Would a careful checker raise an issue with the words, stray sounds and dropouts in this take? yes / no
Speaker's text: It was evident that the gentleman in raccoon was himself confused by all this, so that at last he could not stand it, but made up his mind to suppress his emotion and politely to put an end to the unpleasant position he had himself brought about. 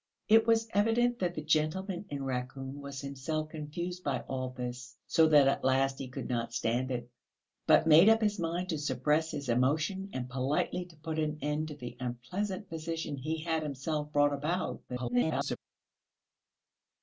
yes